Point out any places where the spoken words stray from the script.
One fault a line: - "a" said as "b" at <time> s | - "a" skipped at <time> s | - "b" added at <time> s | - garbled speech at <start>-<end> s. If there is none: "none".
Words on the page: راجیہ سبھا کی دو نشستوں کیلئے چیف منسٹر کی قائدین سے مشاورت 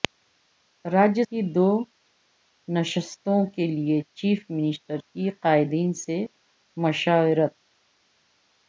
- "سبھا" skipped at 1.2 s